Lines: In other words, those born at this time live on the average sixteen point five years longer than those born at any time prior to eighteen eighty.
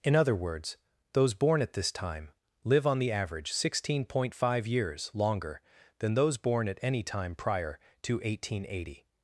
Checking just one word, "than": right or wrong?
right